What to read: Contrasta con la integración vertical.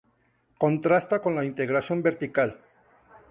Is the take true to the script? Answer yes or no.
yes